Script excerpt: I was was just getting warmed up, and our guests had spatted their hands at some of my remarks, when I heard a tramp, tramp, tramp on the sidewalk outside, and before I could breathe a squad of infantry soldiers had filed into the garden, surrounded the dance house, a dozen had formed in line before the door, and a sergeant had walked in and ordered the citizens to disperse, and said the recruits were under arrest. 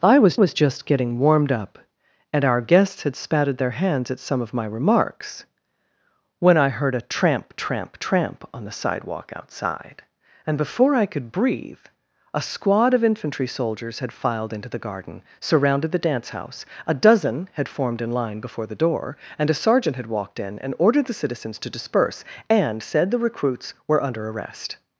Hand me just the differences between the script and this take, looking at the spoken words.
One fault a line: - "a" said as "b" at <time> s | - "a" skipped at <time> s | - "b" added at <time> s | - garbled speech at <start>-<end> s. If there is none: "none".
none